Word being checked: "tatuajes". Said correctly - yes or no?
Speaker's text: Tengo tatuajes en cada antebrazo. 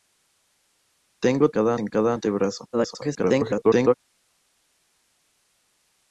no